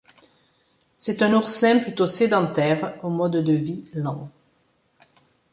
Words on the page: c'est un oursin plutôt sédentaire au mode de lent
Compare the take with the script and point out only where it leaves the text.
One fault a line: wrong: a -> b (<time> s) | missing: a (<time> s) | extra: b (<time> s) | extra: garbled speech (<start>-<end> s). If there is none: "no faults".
extra: vie (3.5 s)